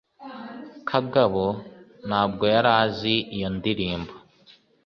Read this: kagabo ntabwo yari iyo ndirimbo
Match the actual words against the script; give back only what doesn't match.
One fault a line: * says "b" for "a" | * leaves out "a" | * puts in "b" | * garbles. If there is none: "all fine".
* puts in "azi"